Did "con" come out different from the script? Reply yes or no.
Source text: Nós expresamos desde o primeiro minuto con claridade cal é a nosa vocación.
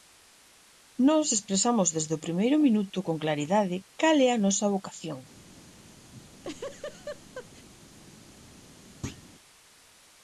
no